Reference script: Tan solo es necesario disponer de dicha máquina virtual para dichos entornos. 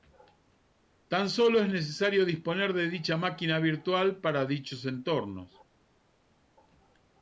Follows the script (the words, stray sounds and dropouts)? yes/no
yes